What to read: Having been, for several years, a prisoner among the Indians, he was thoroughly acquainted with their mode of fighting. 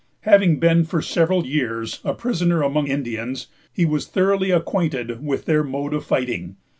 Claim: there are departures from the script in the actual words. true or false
true